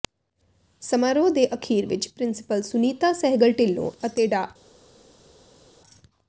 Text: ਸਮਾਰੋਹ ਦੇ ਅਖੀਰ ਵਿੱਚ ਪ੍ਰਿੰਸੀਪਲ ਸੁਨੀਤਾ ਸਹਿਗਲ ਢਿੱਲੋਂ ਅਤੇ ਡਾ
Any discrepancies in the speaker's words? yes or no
no